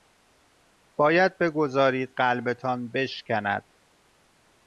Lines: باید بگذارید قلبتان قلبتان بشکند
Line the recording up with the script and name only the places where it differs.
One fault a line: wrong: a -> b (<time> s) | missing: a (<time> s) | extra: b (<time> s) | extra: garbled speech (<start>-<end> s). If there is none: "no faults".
missing: قلبتان (2.9 s)